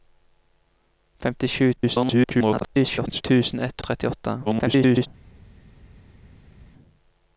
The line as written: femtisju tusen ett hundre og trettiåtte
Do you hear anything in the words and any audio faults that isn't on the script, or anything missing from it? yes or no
yes